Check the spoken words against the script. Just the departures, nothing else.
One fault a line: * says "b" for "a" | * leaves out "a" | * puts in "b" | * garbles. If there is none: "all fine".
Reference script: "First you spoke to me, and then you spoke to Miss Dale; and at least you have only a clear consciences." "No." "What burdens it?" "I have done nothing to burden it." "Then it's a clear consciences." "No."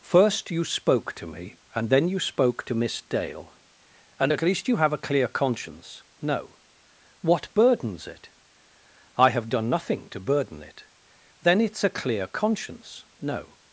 * leaves out "only"
* says "conscience" for "consciences"
* says "conscience" for "consciences"